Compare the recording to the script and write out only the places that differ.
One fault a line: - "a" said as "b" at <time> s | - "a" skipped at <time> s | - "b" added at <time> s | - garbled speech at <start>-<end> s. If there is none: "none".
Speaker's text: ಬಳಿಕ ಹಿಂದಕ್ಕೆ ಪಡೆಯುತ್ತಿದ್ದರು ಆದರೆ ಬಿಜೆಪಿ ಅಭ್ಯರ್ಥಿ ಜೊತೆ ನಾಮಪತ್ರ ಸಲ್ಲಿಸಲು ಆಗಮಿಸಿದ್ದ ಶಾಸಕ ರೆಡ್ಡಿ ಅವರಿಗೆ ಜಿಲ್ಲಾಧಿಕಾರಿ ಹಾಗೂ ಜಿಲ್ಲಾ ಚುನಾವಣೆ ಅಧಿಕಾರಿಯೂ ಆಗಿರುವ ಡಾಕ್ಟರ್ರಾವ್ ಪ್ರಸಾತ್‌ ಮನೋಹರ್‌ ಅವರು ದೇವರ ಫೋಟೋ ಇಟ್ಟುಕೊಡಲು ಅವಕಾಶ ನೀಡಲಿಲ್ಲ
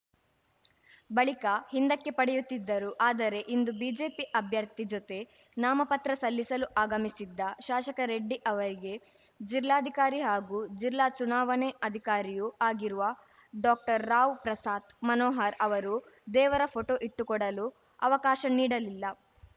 - "ಇಂದು" added at 3.5 s